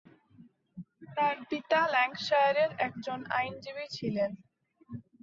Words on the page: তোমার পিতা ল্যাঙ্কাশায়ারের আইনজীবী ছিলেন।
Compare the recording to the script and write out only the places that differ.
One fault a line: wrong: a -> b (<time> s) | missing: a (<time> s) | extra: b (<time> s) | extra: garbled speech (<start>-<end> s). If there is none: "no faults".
wrong: তোমার -> তার (1.1 s)
extra: একজন (2.9 s)